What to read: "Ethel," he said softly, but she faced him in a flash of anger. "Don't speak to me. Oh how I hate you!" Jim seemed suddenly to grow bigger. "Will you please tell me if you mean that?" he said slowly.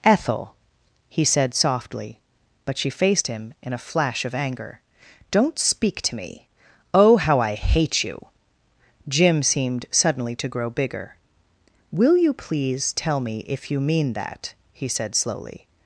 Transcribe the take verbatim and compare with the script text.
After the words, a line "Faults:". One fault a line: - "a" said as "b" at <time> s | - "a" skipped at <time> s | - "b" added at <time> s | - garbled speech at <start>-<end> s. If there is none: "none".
"Ethel," he said softly, but she faced him in a flash of anger. "Don't speak to me. Oh how I hate you!" Jim seemed suddenly to grow bigger. "Will you please tell me if you mean that?" he said slowly.
Faults:
none